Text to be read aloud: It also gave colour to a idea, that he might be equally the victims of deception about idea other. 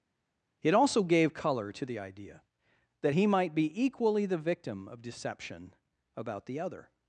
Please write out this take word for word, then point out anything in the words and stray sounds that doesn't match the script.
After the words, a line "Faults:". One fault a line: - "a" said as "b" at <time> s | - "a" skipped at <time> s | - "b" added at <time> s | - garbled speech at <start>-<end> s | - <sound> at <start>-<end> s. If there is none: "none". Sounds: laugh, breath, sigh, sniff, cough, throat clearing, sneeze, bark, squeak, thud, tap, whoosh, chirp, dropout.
It also gave colour to the idea, that he might be equally the victim of deception about the other.
Faults:
- "a" said as "the" at 1.9 s
- "victims" said as "victim" at 4.4 s
- "idea" said as "the" at 6.5 s